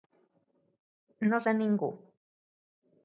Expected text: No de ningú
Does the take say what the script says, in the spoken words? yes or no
yes